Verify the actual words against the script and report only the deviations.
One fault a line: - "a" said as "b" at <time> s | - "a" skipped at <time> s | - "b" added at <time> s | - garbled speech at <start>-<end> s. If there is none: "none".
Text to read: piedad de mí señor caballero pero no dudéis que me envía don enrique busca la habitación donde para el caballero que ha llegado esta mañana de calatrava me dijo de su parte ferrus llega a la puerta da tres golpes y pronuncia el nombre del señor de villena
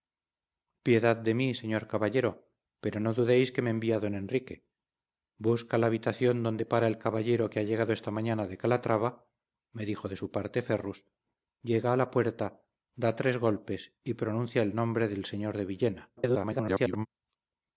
- garbled speech at 16.2-17.1 s